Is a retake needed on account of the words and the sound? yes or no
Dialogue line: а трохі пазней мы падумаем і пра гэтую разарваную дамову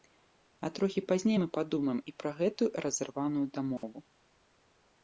yes